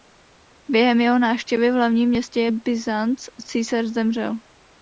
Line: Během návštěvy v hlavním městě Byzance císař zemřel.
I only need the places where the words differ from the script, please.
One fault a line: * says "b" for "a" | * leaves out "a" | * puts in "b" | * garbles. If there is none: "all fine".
* puts in "jeho"